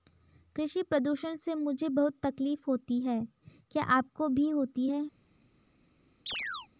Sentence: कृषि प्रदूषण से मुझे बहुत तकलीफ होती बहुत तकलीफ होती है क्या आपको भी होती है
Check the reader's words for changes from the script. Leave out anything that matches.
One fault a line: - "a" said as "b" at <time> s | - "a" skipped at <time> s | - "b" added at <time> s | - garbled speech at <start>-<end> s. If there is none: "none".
- "बहुत तकलीफ होती" skipped at 3.0 s